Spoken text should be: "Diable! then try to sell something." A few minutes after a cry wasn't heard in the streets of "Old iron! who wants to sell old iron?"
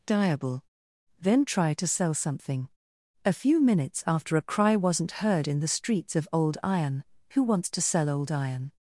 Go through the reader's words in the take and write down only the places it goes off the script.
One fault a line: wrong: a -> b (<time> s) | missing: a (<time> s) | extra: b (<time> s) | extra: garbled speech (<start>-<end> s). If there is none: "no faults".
no faults